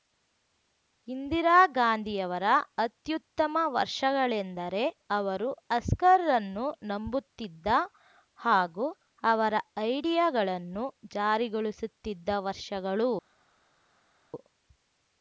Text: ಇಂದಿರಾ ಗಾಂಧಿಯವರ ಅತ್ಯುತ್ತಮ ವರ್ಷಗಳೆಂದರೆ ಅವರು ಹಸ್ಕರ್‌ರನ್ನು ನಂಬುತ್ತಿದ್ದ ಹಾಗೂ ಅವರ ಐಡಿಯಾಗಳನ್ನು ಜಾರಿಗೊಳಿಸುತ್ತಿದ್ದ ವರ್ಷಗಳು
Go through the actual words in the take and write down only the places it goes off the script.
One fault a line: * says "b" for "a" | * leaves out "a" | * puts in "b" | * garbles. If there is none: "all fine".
all fine